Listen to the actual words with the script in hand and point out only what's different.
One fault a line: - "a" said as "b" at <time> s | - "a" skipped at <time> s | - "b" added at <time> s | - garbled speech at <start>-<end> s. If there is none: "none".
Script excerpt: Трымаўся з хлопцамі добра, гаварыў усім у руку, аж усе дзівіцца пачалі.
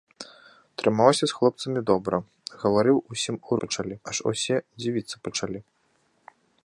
- "руку" said as "пачалі" at 3.7 s